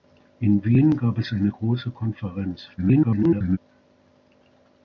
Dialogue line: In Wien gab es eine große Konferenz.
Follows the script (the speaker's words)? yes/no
no